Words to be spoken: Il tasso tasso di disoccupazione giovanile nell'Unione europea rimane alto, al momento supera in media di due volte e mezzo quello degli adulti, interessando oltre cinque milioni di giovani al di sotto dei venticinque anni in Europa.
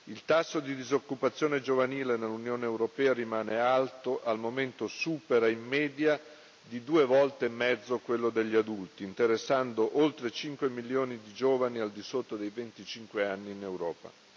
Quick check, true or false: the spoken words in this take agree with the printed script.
false